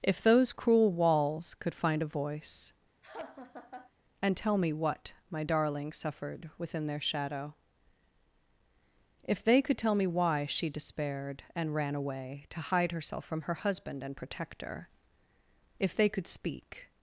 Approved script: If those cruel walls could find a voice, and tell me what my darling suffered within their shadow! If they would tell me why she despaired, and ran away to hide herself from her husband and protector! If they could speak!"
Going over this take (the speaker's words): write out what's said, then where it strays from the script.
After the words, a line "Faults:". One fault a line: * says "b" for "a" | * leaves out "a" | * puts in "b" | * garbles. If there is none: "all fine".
If those cruel walls could find a voice, and tell me what my darling suffered within their shadow! If they could tell me why she despaired, and ran away to hide herself from her husband and protector! If they could speak!"
Faults:
* says "could" for "would"